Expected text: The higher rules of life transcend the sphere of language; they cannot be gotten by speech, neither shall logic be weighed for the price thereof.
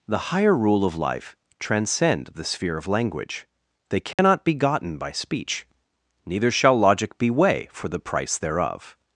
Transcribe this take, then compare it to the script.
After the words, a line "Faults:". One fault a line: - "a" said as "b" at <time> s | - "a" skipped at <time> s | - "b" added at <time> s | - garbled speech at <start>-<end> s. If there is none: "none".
The higher rule of life transcend the sphere of language; they cannot be gotten by speech, neither shall logic be weigh for the price thereof.
Faults:
- "rules" said as "rule" at 0.6 s
- "weighed" said as "weigh" at 7.3 s